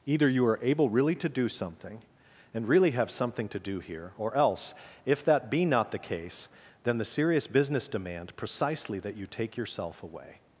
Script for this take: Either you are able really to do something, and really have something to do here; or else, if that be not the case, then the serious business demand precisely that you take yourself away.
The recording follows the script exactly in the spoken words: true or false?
true